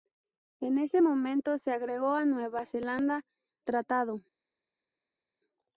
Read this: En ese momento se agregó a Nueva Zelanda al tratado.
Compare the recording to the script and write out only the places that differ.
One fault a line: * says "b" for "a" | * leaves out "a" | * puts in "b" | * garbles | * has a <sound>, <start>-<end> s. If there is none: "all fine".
* leaves out "al"